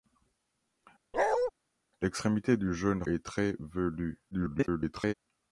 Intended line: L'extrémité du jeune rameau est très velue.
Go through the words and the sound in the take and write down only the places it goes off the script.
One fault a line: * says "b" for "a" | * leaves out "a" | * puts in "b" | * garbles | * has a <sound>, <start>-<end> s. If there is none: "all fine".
* has a bark, 1.1-1.5 s
* leaves out "rameau"
* garbles